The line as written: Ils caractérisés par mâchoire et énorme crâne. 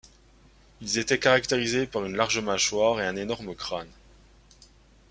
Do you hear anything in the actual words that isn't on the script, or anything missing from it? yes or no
yes